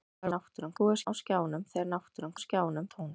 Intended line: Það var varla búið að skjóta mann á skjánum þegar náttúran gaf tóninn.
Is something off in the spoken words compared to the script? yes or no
yes